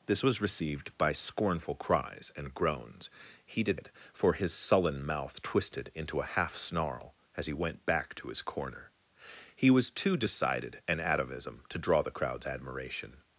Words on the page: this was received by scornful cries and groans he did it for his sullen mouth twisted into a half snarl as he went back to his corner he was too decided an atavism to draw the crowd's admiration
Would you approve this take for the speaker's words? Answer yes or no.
yes